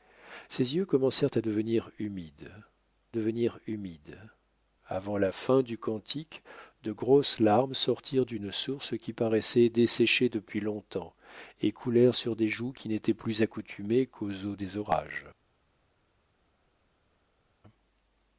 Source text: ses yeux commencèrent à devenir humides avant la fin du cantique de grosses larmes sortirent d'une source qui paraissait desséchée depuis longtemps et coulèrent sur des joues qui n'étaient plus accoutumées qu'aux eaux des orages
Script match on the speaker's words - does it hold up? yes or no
no